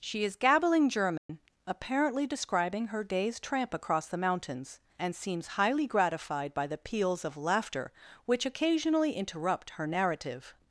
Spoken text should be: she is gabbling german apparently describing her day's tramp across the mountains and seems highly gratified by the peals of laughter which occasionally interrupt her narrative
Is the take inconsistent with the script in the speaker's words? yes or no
no